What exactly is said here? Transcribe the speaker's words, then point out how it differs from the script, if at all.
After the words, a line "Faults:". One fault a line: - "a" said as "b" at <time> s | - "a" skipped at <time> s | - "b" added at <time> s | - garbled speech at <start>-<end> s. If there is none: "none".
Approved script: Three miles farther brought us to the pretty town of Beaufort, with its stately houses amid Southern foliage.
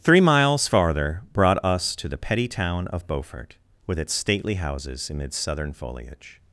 Three miles farther brought us to the petty town of Beaufort, with its stately houses amid Southern foliage.
Faults:
- "pretty" said as "petty" at 2.2 s